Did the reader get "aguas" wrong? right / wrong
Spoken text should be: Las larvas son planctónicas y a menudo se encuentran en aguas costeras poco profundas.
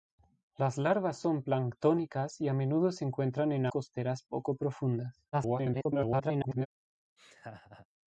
wrong